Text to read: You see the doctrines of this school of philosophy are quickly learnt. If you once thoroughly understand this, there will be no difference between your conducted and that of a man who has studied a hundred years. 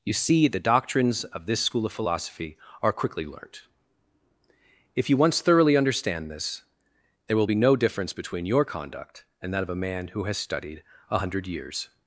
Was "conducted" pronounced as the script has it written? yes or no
no